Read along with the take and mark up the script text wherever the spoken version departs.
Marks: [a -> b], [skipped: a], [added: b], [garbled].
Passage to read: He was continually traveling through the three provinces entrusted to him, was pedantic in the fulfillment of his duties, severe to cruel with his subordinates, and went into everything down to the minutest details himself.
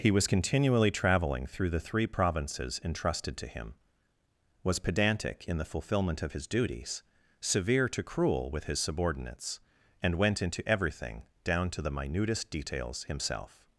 He was continually traveling through the three provinces entrusted to him, was pedantic in the fulfillment of his duties, severe to cruel with his subordinates, and went into everything down to the minutest details himself.